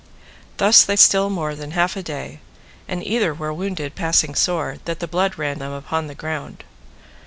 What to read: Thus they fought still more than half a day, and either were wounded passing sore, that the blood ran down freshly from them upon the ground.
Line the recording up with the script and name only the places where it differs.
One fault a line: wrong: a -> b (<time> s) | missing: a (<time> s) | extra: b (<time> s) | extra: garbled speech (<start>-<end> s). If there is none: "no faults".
missing: fought (0.9 s)
missing: down freshly from (5.6 s)